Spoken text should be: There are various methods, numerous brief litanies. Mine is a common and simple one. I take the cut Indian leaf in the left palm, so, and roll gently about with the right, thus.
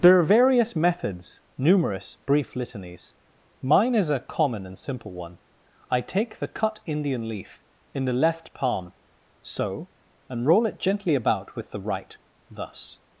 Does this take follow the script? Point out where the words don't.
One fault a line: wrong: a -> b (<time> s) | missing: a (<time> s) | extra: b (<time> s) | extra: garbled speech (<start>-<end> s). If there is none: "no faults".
extra: it (10.7 s)